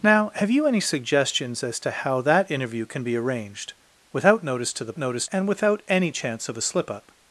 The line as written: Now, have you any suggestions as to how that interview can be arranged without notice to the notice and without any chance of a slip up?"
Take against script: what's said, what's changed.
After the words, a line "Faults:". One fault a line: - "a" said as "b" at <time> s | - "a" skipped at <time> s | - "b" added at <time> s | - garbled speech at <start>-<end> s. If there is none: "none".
Now, have you any suggestions as to how that interview can be arranged without notice to the notice and without any chance of a slip up?"
Faults:
none